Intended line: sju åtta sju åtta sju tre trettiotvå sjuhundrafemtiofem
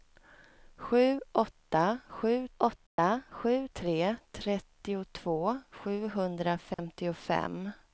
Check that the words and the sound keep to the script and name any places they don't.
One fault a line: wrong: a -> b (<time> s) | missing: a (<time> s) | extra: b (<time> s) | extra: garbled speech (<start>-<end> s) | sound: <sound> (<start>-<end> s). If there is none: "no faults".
sound: dropout (2.9-3.0 s)
sound: dropout (6.7-6.8 s)